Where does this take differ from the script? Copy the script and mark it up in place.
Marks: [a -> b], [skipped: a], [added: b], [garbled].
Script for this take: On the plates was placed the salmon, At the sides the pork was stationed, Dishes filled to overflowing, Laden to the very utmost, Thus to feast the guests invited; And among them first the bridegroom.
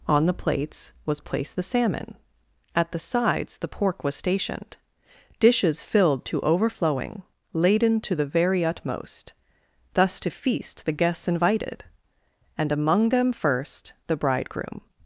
On the plates was placed the salmon, At the sides the pork was stationed, Dishes filled to overflowing, Laden to the very utmost, Thus to feast the guests invited; And among them first the bridegroom.